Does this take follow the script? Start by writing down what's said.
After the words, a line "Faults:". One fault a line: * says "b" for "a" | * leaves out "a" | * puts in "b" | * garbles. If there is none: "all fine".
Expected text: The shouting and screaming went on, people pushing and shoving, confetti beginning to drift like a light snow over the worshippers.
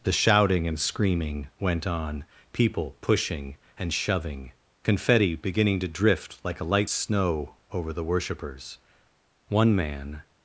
The shouting and screaming went on, people pushing and shoving, confetti beginning to drift like a light snow over the worshippers. One man
Faults:
* puts in "One man"